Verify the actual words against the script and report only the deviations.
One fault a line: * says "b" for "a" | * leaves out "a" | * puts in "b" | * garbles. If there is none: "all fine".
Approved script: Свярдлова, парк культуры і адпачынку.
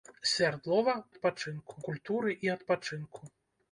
* says "адпачынку" for "парк"